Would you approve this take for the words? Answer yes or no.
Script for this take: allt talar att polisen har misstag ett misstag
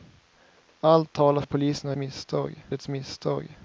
yes